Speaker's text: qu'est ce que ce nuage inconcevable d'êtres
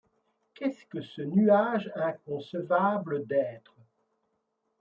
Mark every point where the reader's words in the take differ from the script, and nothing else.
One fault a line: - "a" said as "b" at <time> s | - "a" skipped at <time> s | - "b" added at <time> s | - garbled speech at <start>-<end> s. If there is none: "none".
none